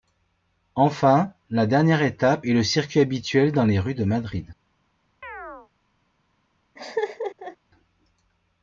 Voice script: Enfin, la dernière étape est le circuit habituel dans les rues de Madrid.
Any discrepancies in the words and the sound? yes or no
yes